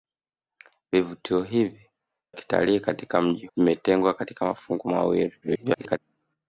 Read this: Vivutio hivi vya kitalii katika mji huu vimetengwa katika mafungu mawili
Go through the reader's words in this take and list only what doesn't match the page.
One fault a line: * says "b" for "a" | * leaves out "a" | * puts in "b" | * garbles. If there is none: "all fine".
* leaves out "vya"
* leaves out "huu"
* garbles